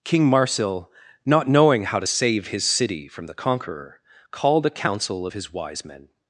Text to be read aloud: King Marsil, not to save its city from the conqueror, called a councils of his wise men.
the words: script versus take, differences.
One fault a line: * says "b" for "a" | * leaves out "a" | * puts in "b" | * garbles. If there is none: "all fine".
* puts in "knowing how"
* says "his" for "its"
* says "council" for "councils"